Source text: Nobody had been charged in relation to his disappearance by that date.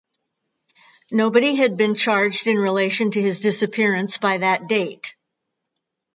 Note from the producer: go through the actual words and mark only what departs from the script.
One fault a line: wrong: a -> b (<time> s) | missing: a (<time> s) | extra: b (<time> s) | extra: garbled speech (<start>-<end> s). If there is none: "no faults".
no faults